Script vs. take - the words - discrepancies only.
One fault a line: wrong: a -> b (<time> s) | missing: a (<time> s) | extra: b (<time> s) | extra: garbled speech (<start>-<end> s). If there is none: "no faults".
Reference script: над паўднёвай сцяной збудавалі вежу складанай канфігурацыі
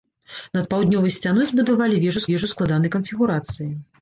extra: вежу (2.3 s)